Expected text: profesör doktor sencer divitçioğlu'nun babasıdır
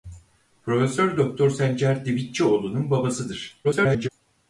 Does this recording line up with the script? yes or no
no